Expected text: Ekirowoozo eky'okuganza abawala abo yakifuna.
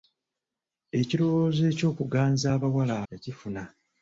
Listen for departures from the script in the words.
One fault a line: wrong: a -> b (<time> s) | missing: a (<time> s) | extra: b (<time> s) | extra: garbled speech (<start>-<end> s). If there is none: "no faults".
missing: abo (2.9 s)